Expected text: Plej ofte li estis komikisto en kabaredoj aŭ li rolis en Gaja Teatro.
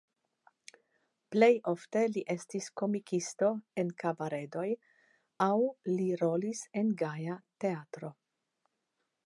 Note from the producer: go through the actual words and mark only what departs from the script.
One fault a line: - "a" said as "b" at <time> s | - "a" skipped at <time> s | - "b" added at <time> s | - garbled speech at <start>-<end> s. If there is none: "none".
none